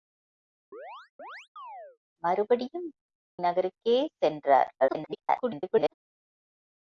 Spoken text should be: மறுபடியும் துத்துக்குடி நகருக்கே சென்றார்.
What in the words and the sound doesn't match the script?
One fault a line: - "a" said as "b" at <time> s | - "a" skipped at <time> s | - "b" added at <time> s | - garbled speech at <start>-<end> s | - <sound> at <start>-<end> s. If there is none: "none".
- chirp at 0.7-2.0 s
- "துத்துக்குடி" skipped at 2.9 s
- garbled speech at 4.8-5.9 s